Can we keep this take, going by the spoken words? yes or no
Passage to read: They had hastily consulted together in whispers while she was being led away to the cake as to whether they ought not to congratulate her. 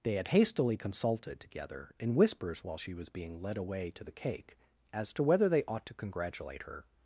no